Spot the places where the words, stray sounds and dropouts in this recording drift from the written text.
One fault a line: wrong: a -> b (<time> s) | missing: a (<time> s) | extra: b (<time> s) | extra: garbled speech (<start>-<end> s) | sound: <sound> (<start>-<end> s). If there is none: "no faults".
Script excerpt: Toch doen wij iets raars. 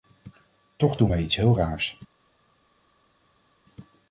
extra: heel (1.3 s)